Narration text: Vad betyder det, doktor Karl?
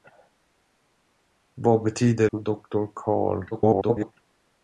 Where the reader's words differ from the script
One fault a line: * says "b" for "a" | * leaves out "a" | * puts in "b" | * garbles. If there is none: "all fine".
* leaves out "det"
* garbles